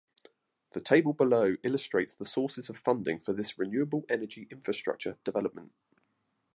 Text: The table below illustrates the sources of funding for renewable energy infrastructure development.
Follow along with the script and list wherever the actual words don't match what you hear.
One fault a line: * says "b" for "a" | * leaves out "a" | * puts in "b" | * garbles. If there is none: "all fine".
* puts in "this"